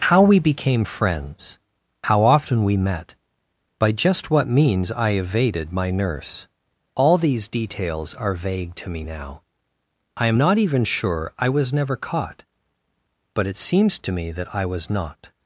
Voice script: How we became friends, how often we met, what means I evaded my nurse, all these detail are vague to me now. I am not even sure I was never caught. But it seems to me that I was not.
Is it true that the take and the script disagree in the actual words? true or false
true